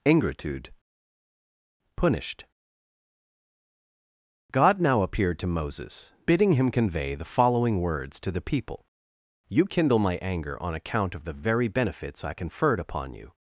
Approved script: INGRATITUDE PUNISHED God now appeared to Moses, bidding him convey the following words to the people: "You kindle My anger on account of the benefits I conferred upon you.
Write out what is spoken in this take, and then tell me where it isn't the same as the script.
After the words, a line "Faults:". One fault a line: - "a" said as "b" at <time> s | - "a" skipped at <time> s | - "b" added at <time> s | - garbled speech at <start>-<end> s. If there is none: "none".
INGRATITUDE PUNISHED God now appeared to Moses, bidding him convey the following words to the people: "You kindle My anger on account of the very benefits I conferred upon you.
Faults:
- "very" added at 11.4 s